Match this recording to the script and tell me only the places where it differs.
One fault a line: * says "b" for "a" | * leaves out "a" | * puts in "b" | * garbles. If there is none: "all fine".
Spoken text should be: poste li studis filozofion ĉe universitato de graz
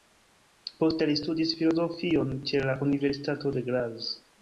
* puts in "la"